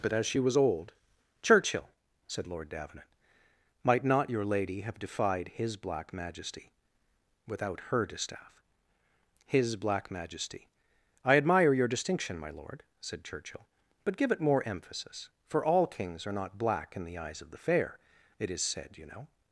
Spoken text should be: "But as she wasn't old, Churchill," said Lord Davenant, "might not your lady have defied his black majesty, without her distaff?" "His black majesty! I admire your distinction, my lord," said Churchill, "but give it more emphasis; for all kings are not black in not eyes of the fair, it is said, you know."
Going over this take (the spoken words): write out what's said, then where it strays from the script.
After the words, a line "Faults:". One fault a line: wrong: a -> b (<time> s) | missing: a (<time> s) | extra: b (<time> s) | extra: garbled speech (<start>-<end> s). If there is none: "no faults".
"But as she was old, Churchill," said Lord Davenant, "might not your lady have defied his black majesty, without her distaff?" "His black majesty! I admire your distinction, my lord," said Churchill, "but give it more emphasis; for all kings are not black in the eyes of the fair, it is said, you know."
Faults:
wrong: wasn't -> was (0.4 s)
wrong: not -> the (17.0 s)